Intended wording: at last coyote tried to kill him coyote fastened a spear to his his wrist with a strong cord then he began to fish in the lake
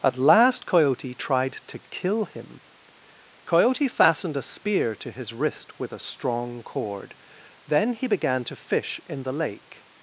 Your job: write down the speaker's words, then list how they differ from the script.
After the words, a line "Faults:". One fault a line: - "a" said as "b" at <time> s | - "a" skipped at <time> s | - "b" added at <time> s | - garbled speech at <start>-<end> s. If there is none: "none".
at last coyote tried to kill him coyote fastened a spear to his wrist with a strong cord then he began to fish in the lake
Faults:
- "his" skipped at 5.3 s